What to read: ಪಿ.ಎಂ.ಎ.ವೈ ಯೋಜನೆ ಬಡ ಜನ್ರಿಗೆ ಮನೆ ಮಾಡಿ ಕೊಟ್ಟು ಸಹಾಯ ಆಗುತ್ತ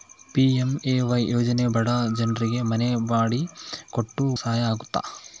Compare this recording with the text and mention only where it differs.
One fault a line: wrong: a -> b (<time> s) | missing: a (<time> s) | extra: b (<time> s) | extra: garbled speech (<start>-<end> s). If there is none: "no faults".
no faults